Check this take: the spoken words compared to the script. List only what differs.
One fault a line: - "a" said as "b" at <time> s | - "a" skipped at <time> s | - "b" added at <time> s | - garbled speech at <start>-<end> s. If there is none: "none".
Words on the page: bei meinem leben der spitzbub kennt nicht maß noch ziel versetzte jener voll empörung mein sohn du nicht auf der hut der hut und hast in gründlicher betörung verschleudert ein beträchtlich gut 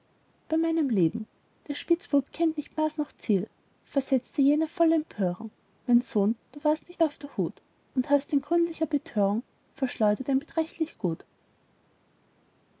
- "warst" added at 6.6 s
- "der hut" skipped at 7.6 s